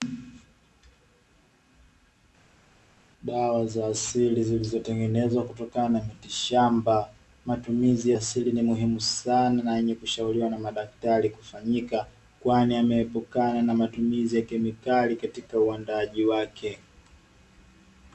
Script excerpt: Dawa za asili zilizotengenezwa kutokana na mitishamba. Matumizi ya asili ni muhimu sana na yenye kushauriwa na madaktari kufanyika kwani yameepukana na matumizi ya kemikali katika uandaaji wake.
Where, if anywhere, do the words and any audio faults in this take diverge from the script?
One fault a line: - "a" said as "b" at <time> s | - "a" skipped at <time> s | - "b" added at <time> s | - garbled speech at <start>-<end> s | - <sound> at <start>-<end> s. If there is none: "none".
none